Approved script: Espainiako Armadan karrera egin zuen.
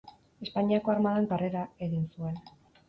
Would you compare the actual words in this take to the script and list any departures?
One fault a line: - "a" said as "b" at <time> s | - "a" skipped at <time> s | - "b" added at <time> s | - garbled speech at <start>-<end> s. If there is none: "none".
none